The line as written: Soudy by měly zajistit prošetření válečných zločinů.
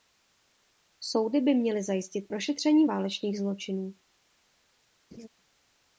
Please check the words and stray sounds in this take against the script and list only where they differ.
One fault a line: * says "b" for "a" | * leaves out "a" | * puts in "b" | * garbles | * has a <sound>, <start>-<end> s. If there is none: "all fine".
* has a laugh, 5.1-5.3 s